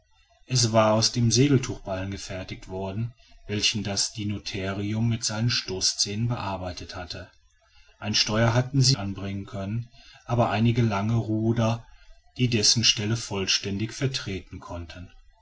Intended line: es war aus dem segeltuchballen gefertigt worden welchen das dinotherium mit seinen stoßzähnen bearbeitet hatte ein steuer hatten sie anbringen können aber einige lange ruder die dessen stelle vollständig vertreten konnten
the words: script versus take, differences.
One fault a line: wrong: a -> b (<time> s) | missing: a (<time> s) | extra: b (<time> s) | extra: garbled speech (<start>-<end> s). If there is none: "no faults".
no faults